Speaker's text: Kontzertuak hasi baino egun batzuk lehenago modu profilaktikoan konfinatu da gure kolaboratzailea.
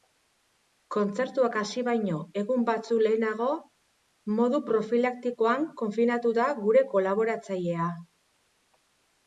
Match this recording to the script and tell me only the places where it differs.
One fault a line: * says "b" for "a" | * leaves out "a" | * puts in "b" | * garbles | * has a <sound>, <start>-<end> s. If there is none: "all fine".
all fine